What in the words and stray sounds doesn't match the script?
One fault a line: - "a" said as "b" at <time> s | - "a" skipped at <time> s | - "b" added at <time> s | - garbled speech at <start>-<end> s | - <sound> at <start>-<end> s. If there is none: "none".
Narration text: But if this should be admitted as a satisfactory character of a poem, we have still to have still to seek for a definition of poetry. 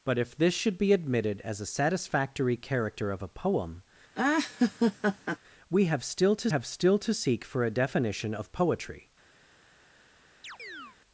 - laugh at 4.1-5.4 s
- chirp at 10.4-11.0 s